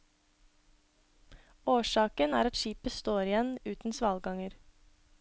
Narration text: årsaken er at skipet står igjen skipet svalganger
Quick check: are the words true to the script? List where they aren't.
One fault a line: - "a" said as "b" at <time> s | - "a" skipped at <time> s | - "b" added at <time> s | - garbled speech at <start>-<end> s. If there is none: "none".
- "skipet" said as "uten" at 3.7 s